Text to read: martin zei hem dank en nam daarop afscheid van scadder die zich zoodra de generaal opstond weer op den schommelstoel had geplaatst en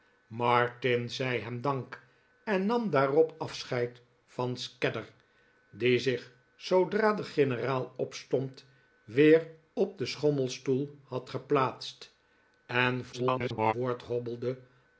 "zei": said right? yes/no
yes